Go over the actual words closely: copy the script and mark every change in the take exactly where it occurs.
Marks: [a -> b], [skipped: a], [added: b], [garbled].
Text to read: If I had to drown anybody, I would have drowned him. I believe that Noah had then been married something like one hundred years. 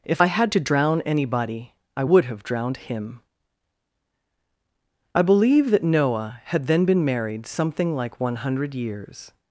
If I had to drown anybody, I would have drowned him. I believe that Noah had then been married something like one hundred years.